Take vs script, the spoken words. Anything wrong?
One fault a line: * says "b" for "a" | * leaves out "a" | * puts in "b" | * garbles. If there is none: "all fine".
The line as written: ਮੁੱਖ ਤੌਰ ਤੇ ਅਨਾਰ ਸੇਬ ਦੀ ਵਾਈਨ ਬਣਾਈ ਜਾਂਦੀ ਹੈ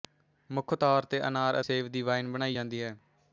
all fine